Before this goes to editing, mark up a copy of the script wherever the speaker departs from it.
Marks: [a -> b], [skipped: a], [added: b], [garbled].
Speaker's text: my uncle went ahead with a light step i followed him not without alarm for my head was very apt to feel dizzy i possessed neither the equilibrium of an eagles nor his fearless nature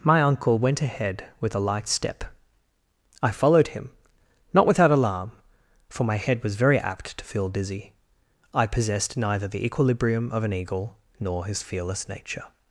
my uncle went ahead with a light step i followed him not without alarm for my head was very apt to feel dizzy i possessed neither the equilibrium of an [eagles -> eagle] nor his fearless nature